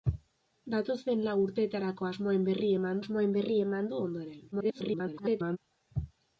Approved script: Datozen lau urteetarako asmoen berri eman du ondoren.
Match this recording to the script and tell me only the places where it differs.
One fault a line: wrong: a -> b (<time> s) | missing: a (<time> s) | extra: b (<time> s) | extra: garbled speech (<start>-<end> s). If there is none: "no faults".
extra: asmoen berri eman (3.0 s)
extra: garbled speech (4.5-5.6 s)